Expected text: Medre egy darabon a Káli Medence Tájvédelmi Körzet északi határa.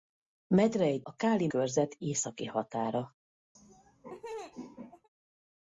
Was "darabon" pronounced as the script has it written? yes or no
no